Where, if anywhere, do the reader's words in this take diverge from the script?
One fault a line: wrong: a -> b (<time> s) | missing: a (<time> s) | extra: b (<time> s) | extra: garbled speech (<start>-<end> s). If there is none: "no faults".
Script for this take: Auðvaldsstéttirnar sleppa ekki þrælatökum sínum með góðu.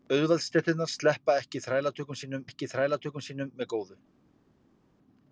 extra: ekki þrælatökum sínum (2.5 s)